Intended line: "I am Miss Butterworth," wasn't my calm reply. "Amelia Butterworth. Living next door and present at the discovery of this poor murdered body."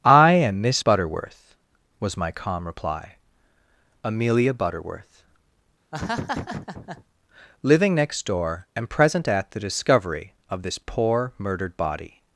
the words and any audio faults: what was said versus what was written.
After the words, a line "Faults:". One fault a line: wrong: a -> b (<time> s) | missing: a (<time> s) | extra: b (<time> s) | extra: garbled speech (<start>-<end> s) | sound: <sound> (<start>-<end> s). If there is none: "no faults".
"I am Miss Butterworth," was my calm reply. "Amelia Butterworth. Living next door and present at the discovery of this poor murdered body."
Faults:
wrong: wasn't -> was (2.0 s)
sound: laugh (5.9-7.0 s)